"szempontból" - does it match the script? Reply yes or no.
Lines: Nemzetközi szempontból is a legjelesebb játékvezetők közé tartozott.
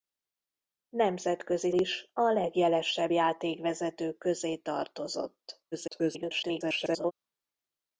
no